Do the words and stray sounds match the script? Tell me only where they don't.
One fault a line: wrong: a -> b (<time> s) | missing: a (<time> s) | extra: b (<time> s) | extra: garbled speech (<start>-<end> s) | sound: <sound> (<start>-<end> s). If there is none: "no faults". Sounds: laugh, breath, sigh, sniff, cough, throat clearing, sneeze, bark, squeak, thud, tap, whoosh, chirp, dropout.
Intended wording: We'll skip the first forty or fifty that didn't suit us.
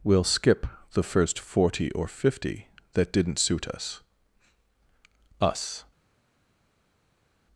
extra: us (5.4 s)